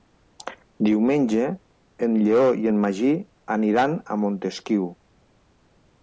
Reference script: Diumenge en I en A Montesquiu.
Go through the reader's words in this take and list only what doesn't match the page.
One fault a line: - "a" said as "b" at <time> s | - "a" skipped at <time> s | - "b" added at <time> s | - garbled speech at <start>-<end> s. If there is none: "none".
- "Lleó" added at 2.2 s
- "Magí aniran" added at 2.8 s